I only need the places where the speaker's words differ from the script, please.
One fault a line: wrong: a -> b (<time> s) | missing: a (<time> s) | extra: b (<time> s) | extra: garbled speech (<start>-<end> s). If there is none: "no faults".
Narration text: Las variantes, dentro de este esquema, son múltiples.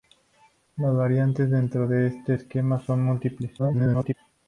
extra: garbled speech (3.6-4.1 s)